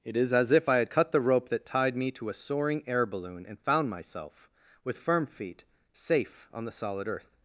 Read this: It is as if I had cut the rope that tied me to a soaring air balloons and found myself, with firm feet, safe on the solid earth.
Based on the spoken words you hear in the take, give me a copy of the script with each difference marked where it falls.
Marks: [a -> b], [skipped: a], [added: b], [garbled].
It is as if I had cut the rope that tied me to a soaring air [balloons -> balloon] and found myself, with firm feet, safe on the solid earth.